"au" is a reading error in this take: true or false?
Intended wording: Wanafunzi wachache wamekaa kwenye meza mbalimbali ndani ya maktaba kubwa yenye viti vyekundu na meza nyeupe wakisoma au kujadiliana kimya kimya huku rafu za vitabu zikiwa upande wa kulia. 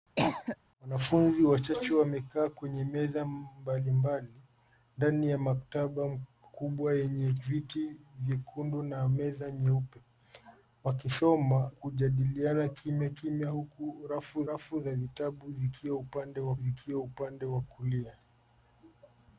true